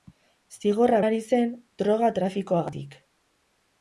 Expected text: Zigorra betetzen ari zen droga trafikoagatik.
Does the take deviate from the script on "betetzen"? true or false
true